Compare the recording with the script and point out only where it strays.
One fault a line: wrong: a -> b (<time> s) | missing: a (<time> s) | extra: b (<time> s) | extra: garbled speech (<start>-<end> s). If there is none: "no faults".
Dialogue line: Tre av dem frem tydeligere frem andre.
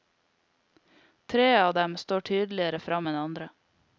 wrong: frem -> står (2.0 s)
extra: enn (3.1 s)